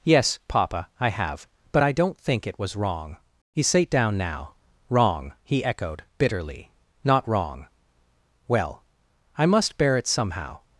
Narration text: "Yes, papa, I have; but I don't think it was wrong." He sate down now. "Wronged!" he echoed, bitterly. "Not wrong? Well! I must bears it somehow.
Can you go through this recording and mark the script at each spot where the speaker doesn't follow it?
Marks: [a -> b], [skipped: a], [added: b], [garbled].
"Yes, papa, I have; but I don't think it was wrong." He sate down now. ["Wronged!" -> Wrong] he echoed, bitterly. "Not wrong? Well! I must [bears -> bear] it somehow.